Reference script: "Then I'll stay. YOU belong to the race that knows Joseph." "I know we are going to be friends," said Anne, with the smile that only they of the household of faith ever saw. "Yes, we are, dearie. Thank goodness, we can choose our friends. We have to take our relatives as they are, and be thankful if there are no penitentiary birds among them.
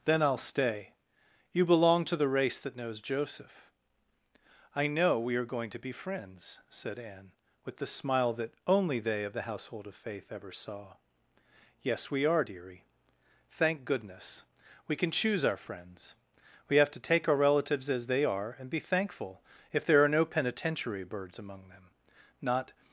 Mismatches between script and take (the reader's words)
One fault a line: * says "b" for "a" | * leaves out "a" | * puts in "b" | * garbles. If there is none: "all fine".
* puts in "Not"